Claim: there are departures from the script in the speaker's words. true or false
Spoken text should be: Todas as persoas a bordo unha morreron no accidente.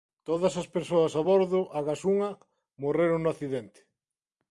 true